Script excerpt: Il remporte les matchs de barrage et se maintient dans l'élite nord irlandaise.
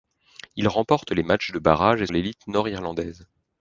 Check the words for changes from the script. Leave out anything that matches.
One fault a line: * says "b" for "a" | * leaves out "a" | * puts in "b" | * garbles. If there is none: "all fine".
* leaves out "se maintient dans"